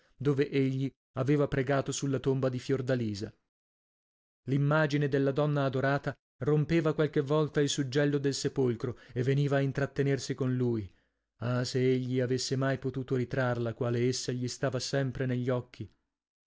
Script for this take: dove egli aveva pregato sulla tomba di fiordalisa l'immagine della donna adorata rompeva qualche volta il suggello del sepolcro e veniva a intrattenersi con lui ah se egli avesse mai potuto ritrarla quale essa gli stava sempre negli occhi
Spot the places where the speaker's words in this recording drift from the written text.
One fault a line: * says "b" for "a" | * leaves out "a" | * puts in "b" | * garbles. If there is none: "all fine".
all fine